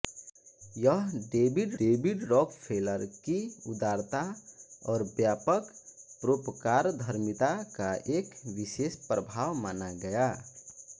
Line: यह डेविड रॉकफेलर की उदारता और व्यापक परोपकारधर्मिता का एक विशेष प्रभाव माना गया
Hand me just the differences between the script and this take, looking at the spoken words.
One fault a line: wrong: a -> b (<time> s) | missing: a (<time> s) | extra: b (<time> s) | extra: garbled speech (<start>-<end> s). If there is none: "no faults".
extra: डेविड (1.8 s)